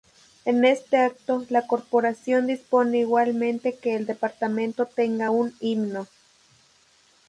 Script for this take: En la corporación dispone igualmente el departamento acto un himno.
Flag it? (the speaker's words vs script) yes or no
yes